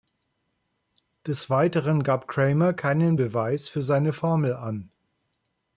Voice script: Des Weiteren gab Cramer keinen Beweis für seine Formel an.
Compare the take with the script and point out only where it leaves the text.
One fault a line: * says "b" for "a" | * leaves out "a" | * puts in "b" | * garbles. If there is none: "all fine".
all fine